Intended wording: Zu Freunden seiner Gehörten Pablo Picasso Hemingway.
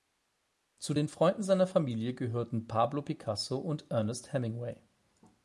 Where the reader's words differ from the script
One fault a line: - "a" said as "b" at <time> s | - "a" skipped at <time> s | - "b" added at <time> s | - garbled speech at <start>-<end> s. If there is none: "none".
- "den" added at 0.9 s
- "Familie" added at 1.7 s
- "und Ernest" added at 3.6 s